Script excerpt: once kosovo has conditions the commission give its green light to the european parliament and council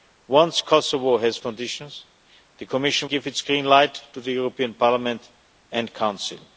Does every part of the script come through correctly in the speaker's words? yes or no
yes